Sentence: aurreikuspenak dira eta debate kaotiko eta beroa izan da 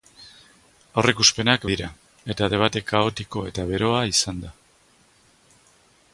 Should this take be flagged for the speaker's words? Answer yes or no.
no